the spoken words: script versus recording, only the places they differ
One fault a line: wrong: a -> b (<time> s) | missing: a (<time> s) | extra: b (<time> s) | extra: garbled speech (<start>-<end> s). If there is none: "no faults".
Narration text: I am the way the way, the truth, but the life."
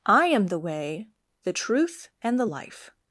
missing: way the (1.5 s)
wrong: but -> and (2.2 s)